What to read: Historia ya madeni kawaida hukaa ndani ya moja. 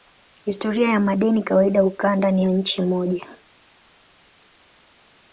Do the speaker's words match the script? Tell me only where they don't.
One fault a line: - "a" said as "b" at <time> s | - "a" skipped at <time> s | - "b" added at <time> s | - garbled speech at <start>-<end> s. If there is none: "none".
- "nchi" added at 2.5 s